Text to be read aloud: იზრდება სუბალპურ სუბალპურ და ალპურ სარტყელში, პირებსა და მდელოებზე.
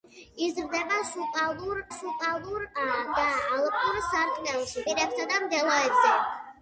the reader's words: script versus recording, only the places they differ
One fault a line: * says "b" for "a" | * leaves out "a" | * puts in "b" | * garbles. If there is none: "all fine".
all fine